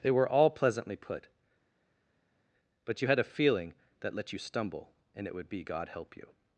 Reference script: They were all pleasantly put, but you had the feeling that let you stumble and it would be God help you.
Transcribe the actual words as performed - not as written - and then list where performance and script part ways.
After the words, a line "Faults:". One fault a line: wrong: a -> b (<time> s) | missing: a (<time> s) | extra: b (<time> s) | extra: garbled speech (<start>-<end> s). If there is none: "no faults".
They were all pleasantly put, but you had a feeling that let you stumble and it would be God help you.
Faults:
wrong: the -> a (3.2 s)